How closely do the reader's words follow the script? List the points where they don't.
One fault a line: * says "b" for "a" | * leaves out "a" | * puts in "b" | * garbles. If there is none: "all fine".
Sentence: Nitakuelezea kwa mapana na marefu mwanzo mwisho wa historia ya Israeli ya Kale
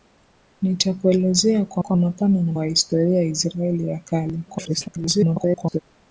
* puts in "kwa"
* leaves out "marefu mwanzo mwisho"
* garbles